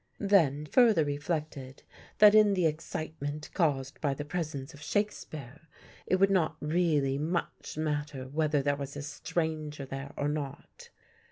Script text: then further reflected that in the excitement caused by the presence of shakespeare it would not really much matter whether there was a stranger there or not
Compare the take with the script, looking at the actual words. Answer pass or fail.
pass